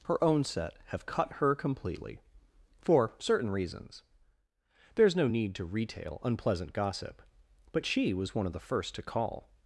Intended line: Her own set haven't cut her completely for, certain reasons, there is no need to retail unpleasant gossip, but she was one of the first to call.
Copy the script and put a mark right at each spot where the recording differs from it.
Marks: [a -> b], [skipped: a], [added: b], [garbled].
Her own set [haven't -> have] cut her completely for, certain reasons, there is no need to retail unpleasant gossip, but she was one of the first to call.